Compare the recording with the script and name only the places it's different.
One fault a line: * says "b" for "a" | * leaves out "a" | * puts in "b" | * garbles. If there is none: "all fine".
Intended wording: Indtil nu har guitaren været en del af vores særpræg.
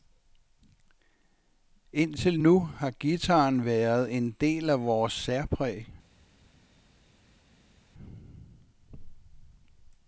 all fine